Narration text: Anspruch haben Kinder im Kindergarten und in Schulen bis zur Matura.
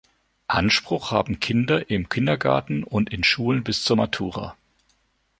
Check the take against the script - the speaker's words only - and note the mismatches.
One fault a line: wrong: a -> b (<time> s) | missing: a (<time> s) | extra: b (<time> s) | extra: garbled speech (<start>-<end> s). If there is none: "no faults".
no faults